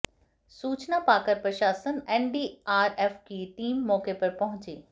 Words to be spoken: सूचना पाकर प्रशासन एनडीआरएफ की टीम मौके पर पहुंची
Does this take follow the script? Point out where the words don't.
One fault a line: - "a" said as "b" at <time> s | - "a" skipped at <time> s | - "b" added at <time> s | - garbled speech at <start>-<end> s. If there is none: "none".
none